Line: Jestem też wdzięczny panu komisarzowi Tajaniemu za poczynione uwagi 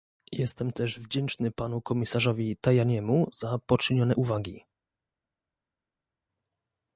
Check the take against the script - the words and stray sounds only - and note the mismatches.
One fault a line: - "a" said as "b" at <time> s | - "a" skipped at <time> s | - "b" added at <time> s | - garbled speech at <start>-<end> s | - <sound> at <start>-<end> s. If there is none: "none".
none